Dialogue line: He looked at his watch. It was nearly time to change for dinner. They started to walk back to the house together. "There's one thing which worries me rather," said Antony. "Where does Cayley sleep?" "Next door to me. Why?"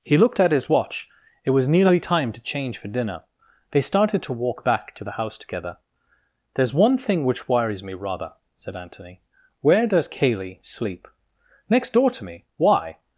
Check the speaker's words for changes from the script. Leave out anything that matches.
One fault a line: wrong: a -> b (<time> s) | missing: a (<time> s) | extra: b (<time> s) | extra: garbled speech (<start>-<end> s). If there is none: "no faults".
no faults